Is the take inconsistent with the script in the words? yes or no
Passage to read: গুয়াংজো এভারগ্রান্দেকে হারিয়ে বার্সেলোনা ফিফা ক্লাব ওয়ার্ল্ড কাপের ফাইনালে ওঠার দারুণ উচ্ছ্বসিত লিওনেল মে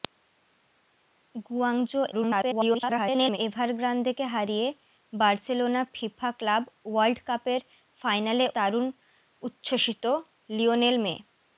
yes